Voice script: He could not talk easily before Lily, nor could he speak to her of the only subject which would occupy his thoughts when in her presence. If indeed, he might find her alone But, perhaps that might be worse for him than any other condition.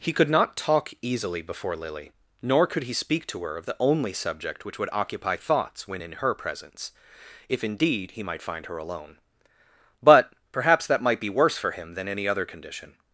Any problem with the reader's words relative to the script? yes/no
yes